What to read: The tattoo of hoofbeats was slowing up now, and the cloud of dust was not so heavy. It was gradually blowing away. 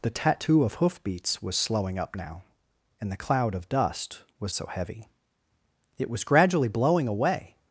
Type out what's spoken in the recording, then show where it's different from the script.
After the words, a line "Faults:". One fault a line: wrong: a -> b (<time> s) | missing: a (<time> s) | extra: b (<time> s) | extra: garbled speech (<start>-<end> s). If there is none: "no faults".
The tattoo of hoofbeats was slowing up now, and the cloud of dust was so heavy. It was gradually blowing away.
Faults:
missing: not (4.5 s)